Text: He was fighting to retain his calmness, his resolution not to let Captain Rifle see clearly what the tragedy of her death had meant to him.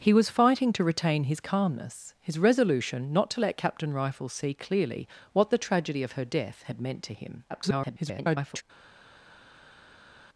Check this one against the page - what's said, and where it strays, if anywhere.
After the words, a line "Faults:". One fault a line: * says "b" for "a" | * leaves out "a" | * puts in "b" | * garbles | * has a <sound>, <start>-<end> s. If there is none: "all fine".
He was fighting to retain his calmness, his resolution not to let Captain Rifle see clearly what the tragedy of her death had meant to him. [garbled]
Faults:
* garbles